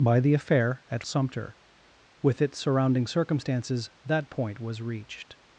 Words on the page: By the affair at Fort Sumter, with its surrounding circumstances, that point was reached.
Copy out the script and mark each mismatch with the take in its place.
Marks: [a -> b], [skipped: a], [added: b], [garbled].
By the affair at [skipped: Fort] Sumter, with its surrounding circumstances, that point was reached.